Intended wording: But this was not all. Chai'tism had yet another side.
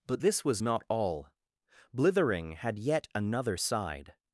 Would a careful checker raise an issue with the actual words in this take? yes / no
yes